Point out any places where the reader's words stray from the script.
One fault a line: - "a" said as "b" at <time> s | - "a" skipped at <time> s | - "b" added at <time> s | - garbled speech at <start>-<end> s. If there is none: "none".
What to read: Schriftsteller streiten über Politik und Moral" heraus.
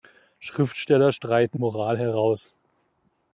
- "über Politik und" skipped at 1.6 s